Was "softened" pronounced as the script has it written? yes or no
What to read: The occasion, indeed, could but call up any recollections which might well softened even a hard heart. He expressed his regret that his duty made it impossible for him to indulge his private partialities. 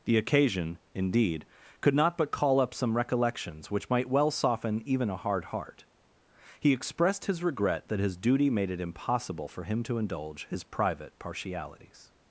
no